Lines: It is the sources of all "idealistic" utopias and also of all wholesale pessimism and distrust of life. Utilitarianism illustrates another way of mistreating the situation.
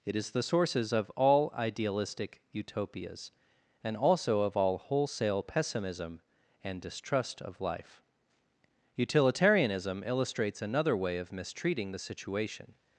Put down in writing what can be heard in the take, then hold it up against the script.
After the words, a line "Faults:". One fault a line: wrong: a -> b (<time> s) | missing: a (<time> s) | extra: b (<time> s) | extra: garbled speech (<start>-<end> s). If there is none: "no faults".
It is the sources of all "idealistic" utopias and also of all wholesale pessimism and distrust of life. Utilitarianism illustrates another way of mistreating the situation.
Faults:
no faults